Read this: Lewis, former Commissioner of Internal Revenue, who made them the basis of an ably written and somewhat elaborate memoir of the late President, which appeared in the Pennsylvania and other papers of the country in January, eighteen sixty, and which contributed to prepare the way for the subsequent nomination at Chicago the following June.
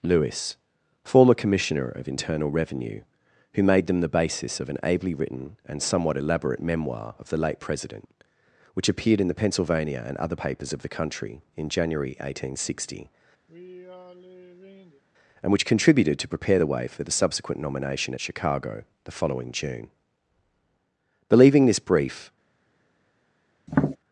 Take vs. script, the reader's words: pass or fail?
fail